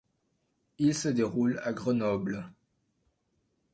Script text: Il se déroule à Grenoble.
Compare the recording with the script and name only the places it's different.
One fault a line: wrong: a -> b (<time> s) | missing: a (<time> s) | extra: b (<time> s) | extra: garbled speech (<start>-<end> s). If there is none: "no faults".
no faults